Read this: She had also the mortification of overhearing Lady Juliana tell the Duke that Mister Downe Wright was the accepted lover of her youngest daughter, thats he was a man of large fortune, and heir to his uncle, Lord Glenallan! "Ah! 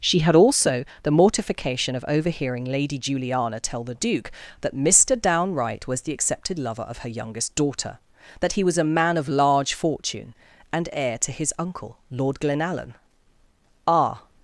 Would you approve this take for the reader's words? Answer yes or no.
no